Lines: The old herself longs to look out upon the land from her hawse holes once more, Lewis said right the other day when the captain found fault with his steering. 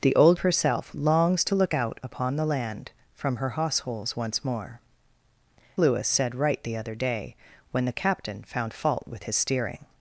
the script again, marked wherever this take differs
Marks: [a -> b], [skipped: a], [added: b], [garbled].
The old herself longs to look out upon the land from her hawse holes once more, Lewis said right the other day when the captain found fault with his steering.